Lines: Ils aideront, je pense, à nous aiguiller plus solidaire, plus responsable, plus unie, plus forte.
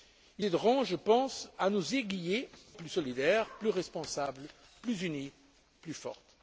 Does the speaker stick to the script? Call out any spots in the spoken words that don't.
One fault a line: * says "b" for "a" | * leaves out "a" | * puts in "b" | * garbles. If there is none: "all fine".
all fine